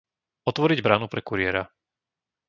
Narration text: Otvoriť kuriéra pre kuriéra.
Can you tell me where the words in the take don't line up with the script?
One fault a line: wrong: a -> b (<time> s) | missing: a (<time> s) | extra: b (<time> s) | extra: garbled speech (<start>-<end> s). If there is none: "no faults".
wrong: kuriéra -> bránu (0.8 s)